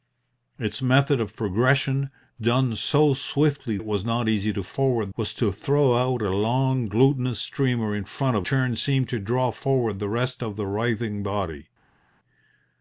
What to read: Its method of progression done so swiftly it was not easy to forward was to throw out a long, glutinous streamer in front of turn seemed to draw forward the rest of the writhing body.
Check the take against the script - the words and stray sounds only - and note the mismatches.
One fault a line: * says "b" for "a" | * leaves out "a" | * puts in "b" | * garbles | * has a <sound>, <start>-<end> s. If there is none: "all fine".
all fine